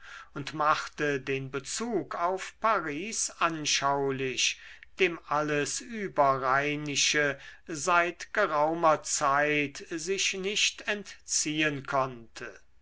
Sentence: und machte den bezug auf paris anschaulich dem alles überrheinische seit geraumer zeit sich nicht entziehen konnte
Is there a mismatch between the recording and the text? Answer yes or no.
no